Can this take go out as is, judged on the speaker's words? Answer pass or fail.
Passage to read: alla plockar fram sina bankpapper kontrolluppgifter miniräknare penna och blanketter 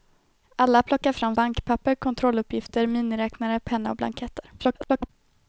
fail